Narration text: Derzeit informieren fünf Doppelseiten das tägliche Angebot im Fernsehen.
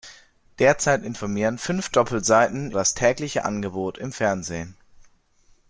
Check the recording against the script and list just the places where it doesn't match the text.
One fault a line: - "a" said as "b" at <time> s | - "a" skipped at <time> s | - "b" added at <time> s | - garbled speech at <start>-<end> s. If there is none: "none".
none